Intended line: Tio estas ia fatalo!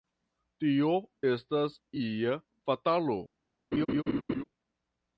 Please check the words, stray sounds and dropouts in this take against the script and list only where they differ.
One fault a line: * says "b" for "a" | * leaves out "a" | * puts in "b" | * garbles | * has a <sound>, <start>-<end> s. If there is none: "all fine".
* has a laugh, 3.7-4.4 s